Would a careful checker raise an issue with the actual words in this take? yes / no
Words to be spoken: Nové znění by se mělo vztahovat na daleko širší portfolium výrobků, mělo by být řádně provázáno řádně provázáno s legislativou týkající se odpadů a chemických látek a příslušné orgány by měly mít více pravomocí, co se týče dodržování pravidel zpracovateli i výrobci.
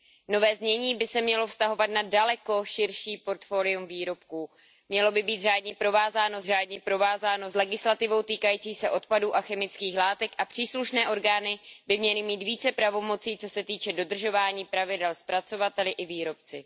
no